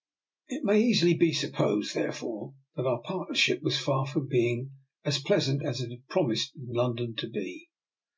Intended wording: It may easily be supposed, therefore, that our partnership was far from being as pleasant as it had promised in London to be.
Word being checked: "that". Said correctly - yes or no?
yes